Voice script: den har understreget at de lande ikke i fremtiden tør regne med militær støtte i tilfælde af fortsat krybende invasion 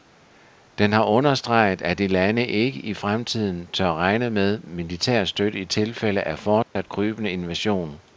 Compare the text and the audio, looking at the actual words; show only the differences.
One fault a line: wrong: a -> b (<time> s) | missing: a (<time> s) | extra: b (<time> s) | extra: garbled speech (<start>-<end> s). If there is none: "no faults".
no faults